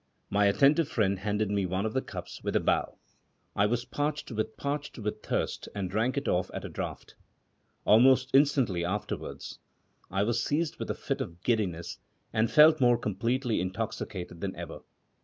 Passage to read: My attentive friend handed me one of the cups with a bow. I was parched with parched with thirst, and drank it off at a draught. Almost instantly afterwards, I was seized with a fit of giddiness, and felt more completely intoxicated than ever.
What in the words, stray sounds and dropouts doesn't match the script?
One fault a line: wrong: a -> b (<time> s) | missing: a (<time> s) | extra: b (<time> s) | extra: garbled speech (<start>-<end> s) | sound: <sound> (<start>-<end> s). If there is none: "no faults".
no faults